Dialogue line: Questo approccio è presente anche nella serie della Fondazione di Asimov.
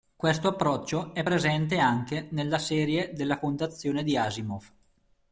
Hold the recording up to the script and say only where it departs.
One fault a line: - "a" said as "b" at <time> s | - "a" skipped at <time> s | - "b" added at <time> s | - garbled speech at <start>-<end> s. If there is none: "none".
none